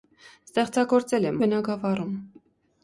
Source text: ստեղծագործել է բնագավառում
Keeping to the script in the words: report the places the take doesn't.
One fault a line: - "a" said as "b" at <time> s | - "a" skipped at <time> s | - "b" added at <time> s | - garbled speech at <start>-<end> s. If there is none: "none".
none